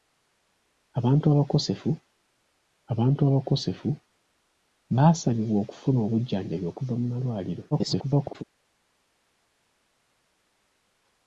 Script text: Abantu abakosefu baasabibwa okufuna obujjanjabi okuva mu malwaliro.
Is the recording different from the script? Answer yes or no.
yes